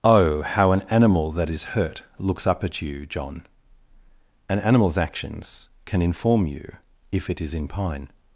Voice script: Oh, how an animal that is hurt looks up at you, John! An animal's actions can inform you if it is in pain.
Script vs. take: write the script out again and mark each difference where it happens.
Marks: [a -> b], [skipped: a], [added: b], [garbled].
Oh, how an animal that is hurt looks up at you, John! An animal's actions can inform you if it is in [pain. -> pine]